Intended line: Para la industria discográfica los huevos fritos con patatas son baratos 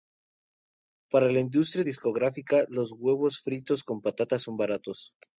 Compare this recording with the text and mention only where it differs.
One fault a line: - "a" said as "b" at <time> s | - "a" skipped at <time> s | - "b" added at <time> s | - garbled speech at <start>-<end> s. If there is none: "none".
none